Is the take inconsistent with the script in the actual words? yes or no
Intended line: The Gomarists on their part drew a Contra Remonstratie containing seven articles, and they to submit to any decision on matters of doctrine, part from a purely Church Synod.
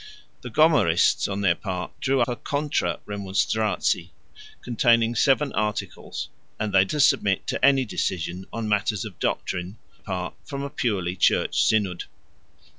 no